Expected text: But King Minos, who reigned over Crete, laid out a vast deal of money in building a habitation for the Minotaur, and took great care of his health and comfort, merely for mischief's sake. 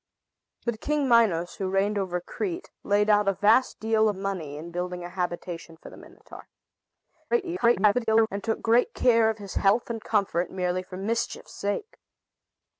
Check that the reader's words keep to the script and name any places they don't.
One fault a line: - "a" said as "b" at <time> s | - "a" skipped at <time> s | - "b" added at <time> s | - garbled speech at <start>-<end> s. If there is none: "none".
- garbled speech at 7.3-8.3 s